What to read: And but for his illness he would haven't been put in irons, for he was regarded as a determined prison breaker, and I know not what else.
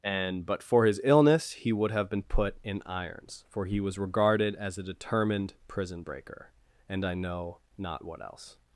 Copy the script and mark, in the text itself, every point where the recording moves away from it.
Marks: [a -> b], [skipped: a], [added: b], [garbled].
And but for his illness he would [haven't -> have] been put in irons, for he was regarded as a determined prison breaker, and I know not what else.